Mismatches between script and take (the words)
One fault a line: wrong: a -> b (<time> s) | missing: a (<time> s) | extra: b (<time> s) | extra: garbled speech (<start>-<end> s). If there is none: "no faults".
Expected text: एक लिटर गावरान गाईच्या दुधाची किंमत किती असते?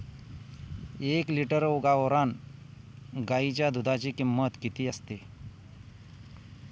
no faults